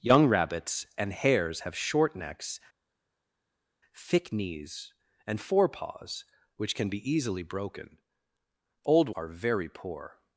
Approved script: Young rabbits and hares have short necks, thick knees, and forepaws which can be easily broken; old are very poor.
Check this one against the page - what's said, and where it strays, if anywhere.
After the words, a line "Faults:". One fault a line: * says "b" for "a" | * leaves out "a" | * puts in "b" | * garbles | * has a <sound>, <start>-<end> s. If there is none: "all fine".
Young rabbits and hares have short necks, thick knees, and forepaws which can be easily broken; old are very poor.
Faults:
all fine